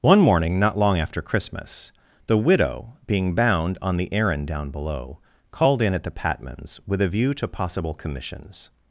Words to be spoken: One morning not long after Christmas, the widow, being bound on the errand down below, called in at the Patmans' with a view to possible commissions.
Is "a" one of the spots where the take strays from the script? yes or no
no